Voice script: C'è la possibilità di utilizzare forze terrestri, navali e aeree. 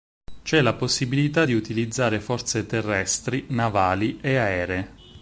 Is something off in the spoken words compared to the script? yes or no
no